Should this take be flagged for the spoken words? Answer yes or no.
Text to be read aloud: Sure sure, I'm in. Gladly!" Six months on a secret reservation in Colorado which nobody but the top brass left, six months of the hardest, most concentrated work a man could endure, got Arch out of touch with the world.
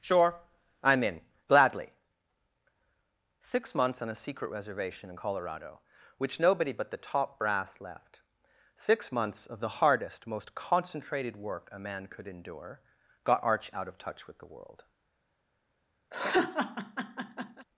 yes